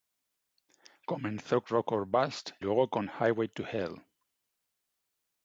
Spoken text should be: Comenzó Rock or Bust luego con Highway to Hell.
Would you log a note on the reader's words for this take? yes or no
no